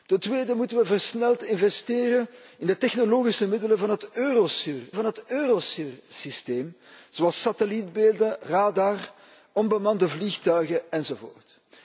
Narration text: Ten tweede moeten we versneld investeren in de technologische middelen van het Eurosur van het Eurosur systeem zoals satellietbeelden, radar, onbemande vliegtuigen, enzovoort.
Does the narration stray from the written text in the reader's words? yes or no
no